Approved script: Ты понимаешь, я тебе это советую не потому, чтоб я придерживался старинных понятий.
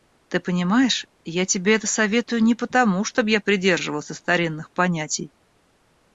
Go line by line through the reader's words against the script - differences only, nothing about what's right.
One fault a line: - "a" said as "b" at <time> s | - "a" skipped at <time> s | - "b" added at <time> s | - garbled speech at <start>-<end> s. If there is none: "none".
none